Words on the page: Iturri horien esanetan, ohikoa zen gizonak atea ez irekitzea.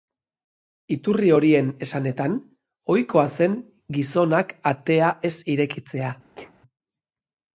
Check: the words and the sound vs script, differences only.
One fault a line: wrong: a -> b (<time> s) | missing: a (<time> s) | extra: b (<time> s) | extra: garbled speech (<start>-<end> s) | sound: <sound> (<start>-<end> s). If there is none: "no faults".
sound: sneeze (6.3-6.5 s)